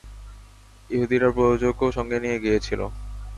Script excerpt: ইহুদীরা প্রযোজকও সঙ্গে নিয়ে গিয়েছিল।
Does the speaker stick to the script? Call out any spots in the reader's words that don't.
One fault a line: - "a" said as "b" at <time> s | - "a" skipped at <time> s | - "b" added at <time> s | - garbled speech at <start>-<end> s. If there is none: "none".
none